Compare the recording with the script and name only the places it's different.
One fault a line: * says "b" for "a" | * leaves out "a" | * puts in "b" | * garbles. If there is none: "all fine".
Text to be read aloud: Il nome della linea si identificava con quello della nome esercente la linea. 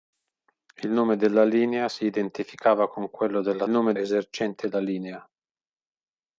all fine